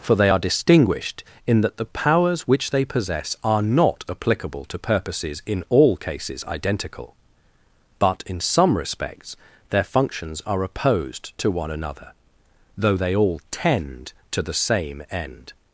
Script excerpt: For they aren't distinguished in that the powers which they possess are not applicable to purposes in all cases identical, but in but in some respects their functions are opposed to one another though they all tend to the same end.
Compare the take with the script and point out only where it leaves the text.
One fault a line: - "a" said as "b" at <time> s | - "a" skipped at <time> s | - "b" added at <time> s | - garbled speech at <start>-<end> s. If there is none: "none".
- "aren't" said as "are" at 0.3 s
- "but in" skipped at 8.4 s